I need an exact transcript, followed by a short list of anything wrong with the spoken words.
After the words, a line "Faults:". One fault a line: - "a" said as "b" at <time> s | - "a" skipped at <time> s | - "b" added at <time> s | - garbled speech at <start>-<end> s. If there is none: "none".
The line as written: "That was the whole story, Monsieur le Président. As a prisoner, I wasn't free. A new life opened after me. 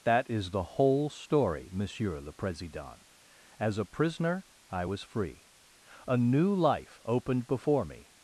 "That is the whole story, Monsieur le Président. As a prisoner, I was free. A new life opened before me.
Faults:
- "was" said as "is" at 0.3 s
- "wasn't" said as "was" at 4.8 s
- "after" said as "before" at 7.5 s